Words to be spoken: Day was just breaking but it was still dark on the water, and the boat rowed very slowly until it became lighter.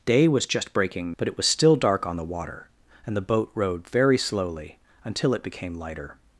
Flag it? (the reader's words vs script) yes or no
no